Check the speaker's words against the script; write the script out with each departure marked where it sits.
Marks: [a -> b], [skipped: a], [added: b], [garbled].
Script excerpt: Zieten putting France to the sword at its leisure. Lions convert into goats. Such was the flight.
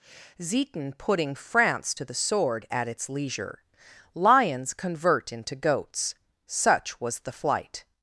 Zieten putting France to the sword at its leisure. Lions convert into goats. Such was the flight.